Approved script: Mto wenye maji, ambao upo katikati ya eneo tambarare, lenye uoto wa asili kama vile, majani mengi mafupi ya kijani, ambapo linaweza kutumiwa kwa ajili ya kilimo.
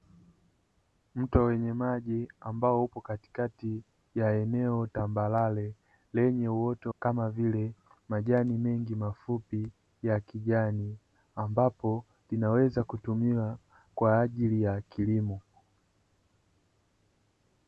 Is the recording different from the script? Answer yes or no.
yes